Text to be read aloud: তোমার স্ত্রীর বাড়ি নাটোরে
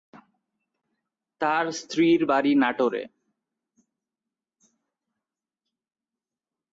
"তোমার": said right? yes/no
no